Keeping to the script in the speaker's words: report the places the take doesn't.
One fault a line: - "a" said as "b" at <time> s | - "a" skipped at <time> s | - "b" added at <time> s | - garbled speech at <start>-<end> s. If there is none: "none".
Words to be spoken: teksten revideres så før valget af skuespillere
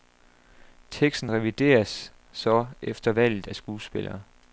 - "før" said as "efter" at 2.8 s